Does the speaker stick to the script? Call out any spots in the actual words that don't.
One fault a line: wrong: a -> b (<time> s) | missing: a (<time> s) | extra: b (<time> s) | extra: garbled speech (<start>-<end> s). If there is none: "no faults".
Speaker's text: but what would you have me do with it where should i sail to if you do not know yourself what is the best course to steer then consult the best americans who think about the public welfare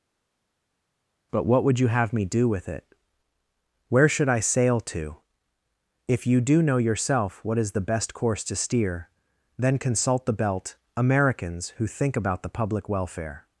missing: not (6.6 s)
wrong: best -> belt (10.3 s)